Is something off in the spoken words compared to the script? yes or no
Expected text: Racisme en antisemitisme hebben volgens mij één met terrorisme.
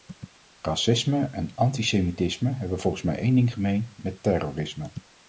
yes